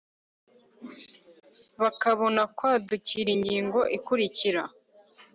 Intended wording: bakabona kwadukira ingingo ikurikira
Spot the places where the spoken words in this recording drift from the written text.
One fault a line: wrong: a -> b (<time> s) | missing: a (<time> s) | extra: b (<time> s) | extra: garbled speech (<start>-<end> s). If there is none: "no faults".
no faults